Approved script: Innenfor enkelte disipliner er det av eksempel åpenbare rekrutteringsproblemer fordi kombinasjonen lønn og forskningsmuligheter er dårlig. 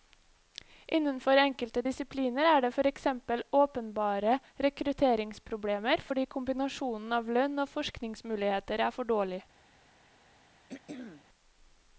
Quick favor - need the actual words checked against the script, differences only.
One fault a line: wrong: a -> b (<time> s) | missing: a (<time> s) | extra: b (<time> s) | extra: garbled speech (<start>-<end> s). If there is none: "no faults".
wrong: av -> for (2.8 s)
extra: av (7.2 s)
extra: for (9.0 s)